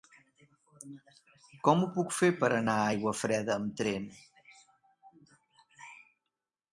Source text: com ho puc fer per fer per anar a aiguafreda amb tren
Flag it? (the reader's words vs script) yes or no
yes